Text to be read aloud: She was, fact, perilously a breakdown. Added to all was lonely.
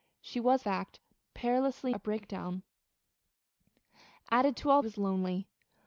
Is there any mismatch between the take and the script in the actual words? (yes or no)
no